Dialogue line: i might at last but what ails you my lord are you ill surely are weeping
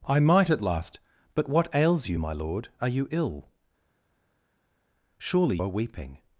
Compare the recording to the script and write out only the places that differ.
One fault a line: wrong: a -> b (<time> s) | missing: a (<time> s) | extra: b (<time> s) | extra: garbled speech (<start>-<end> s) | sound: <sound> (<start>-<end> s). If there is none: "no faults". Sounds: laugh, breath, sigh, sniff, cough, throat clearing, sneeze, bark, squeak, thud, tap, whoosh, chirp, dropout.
no faults